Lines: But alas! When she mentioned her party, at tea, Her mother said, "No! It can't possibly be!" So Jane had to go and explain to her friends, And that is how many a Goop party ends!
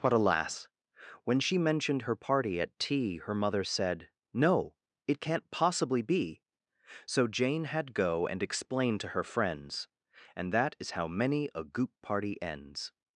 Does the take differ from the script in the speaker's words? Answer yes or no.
yes